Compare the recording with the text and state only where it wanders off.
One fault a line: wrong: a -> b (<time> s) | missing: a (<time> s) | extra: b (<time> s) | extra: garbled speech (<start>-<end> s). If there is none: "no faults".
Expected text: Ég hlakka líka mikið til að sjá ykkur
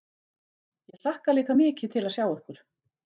no faults